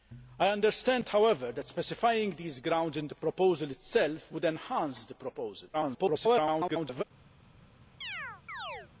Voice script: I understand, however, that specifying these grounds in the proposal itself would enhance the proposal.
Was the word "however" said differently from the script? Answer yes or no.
no